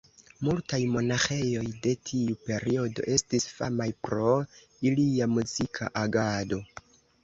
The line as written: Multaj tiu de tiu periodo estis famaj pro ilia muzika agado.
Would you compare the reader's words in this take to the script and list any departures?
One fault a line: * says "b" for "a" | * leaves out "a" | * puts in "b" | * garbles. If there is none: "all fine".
* says "monaĥejoj" for "tiu"